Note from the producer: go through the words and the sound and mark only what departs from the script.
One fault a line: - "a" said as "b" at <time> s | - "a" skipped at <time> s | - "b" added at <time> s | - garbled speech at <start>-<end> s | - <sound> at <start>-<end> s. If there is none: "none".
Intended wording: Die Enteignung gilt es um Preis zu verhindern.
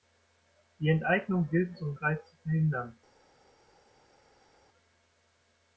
none